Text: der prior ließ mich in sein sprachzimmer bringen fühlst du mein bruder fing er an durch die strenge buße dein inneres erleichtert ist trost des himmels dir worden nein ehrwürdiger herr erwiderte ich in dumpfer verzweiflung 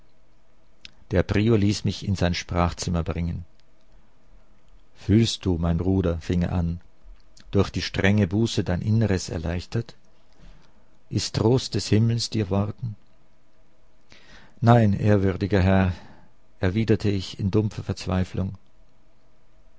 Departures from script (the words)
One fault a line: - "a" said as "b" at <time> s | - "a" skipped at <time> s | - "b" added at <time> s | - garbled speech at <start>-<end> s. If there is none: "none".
none